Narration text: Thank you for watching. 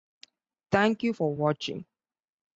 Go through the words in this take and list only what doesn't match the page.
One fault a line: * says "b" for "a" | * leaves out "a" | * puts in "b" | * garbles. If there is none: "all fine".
all fine